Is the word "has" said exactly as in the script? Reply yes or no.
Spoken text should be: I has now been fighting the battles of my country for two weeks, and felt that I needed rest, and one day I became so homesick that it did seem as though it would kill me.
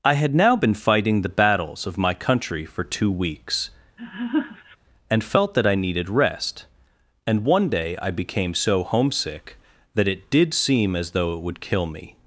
no